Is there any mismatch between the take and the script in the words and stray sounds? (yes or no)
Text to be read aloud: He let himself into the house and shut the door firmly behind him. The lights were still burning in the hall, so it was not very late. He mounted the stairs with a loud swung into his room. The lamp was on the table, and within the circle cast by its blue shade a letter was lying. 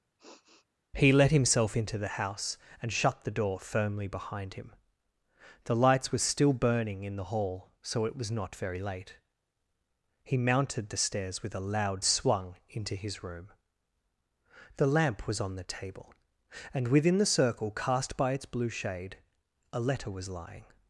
yes